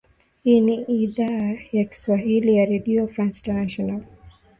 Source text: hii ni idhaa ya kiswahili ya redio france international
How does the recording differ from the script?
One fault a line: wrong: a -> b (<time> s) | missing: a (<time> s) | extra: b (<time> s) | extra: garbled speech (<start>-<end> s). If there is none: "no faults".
no faults